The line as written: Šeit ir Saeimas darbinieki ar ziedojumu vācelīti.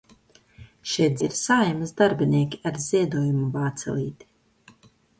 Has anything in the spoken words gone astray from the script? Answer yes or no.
no